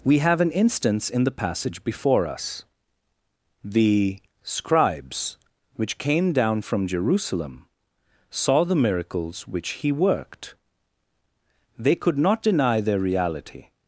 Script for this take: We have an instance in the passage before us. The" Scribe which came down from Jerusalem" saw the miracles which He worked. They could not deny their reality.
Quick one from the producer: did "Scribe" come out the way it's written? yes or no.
no